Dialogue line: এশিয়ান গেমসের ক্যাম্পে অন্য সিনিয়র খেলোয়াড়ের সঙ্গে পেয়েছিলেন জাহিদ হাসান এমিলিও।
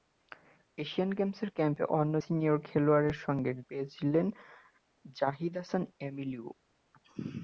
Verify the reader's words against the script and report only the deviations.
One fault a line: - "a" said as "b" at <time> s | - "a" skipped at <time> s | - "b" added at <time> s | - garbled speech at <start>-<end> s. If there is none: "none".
none